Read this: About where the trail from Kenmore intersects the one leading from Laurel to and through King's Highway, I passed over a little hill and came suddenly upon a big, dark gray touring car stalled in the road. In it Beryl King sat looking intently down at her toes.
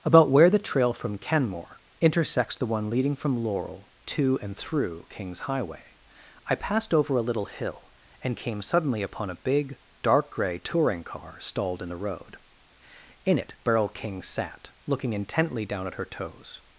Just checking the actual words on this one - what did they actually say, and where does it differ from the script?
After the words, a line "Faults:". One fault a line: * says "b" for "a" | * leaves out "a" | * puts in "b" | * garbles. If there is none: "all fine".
About where the trail from Kenmore intersects the one leading from Laurel to and through King's Highway, I passed over a little hill and came suddenly upon a big, dark gray touring car stalled in the road. In it Beryl King sat looking intently down at her toes.
Faults:
all fine